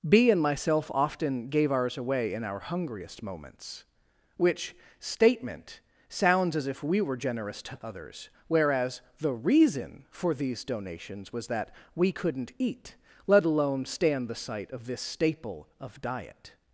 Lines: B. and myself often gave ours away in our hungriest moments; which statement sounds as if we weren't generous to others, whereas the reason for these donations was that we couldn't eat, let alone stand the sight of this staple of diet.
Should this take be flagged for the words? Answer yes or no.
yes